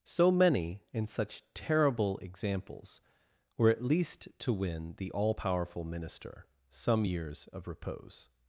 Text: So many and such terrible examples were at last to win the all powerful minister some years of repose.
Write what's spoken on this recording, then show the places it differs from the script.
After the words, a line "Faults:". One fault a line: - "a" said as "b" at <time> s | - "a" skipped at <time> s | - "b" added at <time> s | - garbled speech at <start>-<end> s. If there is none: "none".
So many and such terrible examples were at least to win the all powerful minister some years of repose.
Faults:
- "last" said as "least" at 3.8 s